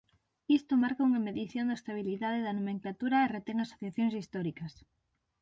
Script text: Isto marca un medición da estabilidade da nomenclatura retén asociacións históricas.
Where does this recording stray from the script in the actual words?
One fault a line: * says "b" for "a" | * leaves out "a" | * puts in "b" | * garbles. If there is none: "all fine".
* says "unha" for "un"
* puts in "e"